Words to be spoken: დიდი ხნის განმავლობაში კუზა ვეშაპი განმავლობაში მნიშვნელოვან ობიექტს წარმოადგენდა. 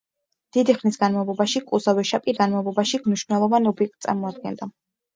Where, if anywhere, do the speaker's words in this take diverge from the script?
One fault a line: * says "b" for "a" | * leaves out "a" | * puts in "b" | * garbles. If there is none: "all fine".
all fine